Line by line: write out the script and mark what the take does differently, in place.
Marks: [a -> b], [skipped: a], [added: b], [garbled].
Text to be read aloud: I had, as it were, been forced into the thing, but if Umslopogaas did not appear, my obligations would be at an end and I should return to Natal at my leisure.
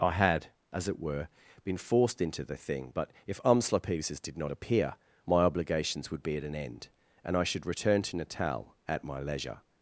I had, as it were, been forced into the thing, but if Umslopogaas did not appear, my obligations would be at an end and I should return to Natal at my leisure.